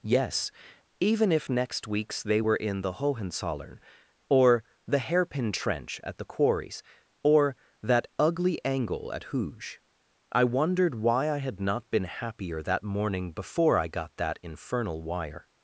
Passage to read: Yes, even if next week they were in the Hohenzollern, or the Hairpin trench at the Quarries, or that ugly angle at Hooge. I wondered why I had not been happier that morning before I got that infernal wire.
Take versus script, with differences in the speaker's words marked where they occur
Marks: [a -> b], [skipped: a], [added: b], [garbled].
Yes, even if next [week -> weeks] they were in the Hohenzollern, or the Hairpin trench at the Quarries, or that ugly angle at Hooge. I wondered why I had not been happier that morning before I got that infernal wire.